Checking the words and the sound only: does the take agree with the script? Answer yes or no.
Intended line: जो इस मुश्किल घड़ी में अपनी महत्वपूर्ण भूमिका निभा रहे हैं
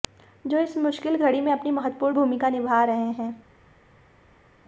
yes